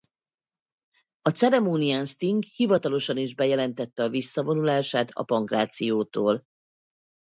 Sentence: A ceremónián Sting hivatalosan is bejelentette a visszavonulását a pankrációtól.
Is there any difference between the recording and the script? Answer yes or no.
no